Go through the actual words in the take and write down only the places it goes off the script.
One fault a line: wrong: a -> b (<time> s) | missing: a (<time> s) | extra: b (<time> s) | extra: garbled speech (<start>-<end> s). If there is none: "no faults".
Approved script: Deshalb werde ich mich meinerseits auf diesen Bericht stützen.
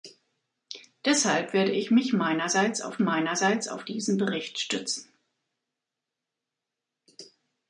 extra: meinerseits auf (3.0 s)